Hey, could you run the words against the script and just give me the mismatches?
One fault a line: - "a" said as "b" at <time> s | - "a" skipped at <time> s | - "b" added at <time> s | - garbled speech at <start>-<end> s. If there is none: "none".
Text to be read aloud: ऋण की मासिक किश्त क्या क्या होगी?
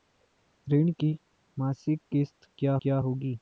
none